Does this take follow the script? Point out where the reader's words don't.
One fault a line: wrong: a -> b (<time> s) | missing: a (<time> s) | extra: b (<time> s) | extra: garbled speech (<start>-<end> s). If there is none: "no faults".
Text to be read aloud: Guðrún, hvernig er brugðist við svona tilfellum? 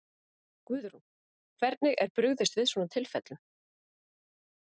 no faults